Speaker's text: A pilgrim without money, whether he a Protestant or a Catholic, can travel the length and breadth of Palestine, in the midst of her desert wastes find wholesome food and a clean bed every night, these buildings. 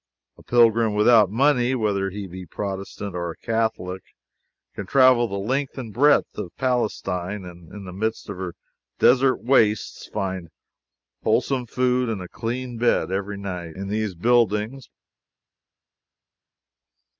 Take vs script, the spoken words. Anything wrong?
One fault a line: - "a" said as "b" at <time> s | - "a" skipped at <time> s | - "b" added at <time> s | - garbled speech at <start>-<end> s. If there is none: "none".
- "be" added at 2.2 s
- "and" added at 7.4 s
- "in" added at 13.8 s